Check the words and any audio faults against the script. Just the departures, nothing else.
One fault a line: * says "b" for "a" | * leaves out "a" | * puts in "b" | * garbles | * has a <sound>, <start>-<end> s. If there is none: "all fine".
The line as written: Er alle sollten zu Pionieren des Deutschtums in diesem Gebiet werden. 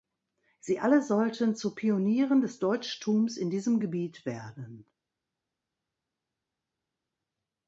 * says "Sie" for "Er"